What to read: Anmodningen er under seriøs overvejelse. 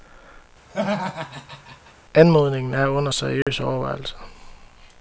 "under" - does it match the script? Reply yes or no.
yes